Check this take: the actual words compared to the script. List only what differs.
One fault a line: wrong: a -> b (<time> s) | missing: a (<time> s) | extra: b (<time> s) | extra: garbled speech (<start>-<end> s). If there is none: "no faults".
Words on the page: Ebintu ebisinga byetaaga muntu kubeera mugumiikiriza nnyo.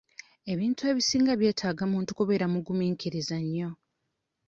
no faults